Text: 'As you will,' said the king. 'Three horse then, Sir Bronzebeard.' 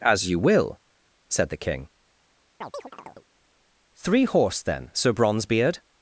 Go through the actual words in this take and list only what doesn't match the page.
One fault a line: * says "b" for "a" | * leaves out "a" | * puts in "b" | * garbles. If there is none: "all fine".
all fine